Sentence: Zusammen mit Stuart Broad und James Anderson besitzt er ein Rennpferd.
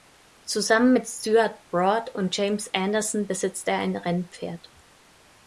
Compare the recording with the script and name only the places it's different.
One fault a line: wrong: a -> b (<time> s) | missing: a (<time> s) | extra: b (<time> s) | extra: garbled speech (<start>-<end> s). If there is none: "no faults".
no faults